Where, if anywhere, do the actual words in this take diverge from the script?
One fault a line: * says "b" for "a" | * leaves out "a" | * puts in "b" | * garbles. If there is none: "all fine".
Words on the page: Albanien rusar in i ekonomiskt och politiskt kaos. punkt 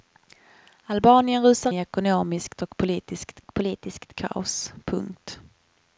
* leaves out "in"
* puts in "och politiskt"